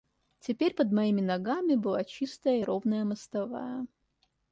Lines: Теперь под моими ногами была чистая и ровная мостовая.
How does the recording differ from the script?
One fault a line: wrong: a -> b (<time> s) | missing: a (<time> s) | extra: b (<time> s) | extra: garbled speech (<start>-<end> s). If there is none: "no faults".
no faults